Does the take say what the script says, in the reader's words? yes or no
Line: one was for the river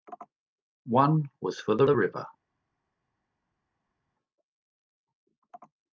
no